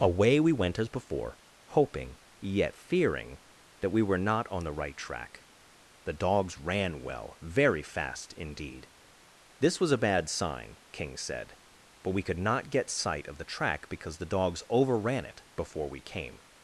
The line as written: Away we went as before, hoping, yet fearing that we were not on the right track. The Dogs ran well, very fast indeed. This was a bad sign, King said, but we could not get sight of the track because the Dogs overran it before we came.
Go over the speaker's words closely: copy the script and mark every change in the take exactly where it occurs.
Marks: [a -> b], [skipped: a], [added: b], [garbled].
Away we went as before, hoping, yet fearing that we were not on the right track. The Dogs ran well, very fast indeed. This was a bad sign, King said, but we could not get sight of the track because the Dogs overran it before we came.